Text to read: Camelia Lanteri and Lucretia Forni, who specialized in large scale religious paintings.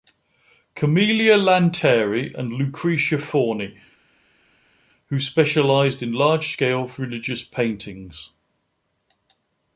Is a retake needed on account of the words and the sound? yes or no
no